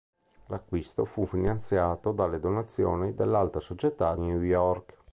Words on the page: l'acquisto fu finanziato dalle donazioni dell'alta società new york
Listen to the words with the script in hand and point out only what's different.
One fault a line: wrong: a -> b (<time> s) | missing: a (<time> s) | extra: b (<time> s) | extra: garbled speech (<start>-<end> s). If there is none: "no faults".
no faults